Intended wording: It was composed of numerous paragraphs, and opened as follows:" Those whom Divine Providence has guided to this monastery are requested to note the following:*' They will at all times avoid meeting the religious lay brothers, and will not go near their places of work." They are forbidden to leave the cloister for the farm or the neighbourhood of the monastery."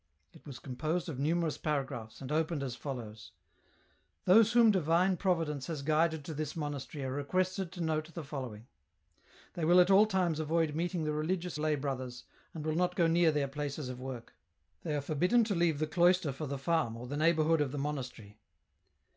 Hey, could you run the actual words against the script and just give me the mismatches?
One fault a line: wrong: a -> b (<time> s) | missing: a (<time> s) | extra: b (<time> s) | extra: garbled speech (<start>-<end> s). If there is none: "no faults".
no faults